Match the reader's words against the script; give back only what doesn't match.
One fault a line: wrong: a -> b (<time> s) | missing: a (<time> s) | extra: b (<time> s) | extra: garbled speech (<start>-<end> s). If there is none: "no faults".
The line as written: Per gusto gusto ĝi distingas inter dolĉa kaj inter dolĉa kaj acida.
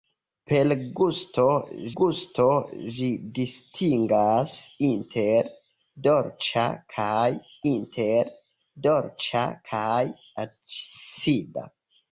no faults